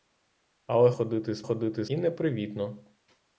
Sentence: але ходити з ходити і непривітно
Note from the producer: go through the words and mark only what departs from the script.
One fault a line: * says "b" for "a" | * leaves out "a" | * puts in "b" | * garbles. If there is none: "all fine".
all fine